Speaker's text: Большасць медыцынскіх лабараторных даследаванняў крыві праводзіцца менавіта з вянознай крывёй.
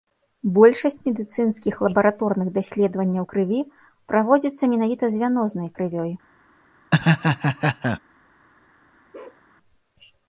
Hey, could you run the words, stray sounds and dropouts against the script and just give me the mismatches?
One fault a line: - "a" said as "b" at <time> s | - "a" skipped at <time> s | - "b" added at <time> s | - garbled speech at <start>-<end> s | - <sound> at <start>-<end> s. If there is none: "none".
- laugh at 6.9-8.0 s
- bark at 9.1-9.4 s